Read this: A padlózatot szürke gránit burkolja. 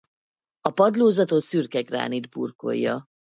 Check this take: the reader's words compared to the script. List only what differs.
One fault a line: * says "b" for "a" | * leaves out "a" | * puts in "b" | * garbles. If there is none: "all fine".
all fine